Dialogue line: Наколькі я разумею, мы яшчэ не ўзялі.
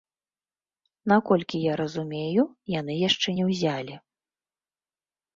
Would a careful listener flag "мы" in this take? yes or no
yes